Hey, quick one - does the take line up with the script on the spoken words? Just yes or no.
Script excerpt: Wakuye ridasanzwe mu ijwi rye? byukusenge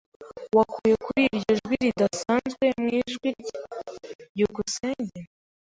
no